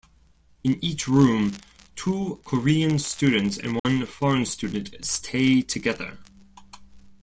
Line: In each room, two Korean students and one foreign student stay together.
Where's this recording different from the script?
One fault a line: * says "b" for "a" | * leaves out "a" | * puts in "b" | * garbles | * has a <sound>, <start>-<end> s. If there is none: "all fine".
* has a dropout, 3.8-3.8 s